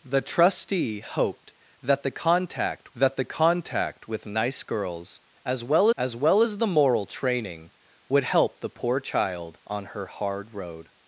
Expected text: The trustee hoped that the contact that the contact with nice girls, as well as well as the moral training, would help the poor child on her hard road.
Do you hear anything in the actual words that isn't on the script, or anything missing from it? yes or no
no